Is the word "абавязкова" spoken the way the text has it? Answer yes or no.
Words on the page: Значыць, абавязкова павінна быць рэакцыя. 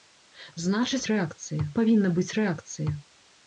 no